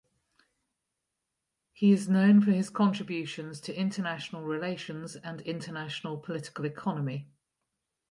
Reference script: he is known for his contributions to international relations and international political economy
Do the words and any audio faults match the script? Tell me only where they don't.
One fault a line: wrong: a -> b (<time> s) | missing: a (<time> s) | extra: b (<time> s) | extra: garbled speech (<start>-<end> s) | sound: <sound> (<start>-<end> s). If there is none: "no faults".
no faults